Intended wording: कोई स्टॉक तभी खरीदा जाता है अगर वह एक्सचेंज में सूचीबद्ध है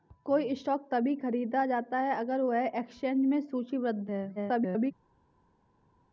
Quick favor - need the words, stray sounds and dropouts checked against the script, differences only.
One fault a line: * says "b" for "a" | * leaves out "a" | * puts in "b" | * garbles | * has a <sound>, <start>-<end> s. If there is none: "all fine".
* garbles